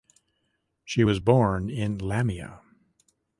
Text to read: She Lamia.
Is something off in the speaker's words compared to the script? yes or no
yes